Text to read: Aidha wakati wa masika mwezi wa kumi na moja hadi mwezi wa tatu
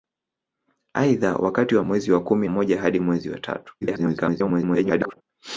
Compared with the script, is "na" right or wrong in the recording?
wrong